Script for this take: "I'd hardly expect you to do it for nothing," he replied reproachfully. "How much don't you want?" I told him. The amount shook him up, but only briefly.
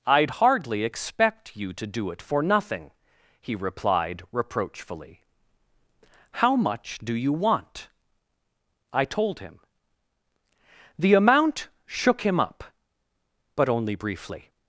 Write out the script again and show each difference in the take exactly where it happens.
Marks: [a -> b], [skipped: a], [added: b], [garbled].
"I'd hardly expect you to do it for nothing," he replied reproachfully. "How much [don't -> do] you want?" I told him. The amount shook him up, but only briefly.